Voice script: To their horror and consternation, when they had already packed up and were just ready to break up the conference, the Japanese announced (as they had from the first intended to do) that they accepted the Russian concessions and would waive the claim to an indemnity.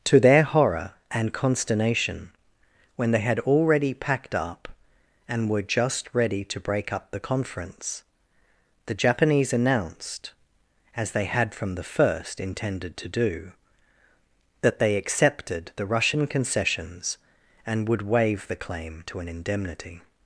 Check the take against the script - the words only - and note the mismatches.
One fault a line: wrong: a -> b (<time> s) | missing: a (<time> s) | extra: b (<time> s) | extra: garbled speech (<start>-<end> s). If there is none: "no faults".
no faults